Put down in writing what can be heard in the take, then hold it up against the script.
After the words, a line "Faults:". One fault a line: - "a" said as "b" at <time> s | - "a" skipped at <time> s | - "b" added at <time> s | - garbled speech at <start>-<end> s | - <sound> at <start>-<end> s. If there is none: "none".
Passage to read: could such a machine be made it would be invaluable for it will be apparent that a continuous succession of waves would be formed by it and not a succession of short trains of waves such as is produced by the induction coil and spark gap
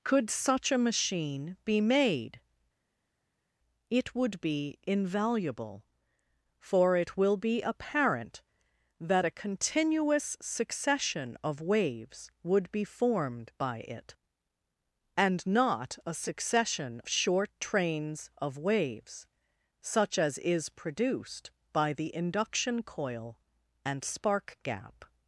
could such a machine be made it would be invaluable for it will be apparent that a continuous succession of waves would be formed by it and not a succession short trains of waves such as is produced by the induction coil and spark gap
Faults:
- "of" skipped at 17.0 s